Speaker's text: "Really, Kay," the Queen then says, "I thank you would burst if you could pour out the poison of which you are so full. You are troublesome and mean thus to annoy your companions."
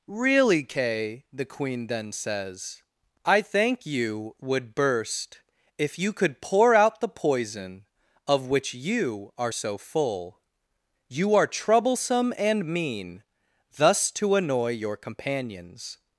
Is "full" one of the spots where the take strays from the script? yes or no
no